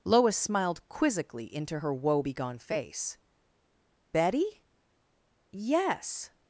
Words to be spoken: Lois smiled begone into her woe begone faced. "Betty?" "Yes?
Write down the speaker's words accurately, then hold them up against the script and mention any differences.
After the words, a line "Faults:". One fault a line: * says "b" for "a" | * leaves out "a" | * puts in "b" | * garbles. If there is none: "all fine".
Lois smiled quizzically into her woe begone face. "Betty?" "Yes?
Faults:
* says "quizzically" for "begone"
* says "face" for "faced"